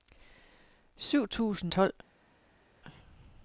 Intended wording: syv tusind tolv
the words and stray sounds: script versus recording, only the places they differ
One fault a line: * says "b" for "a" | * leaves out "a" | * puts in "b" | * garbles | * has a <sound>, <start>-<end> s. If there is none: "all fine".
all fine